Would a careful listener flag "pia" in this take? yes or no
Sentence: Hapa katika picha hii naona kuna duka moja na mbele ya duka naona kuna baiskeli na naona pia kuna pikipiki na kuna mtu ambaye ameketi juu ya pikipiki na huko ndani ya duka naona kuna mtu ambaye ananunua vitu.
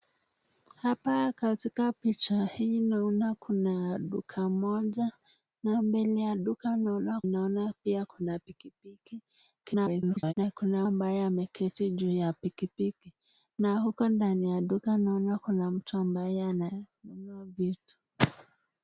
no